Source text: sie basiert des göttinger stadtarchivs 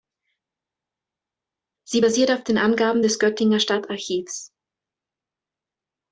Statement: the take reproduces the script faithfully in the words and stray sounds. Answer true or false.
false